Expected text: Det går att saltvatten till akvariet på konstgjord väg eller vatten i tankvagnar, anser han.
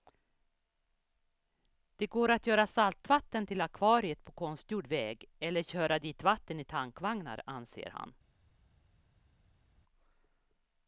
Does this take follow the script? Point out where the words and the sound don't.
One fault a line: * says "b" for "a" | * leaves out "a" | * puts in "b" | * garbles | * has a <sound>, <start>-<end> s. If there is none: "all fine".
* puts in "göra"
* puts in "köra dit"